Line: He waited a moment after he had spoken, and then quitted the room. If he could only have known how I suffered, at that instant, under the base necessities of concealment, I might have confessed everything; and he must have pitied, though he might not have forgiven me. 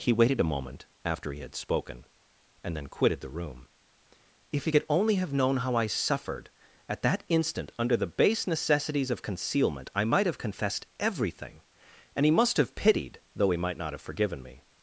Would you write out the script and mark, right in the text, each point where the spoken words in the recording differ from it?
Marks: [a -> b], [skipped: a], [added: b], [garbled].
He waited a moment after he had spoken, and then quitted the room. If he could only have known how I suffered, at that instant, under the base necessities of concealment, I might have confessed everything; and he must have pitied, though he might not have forgiven me.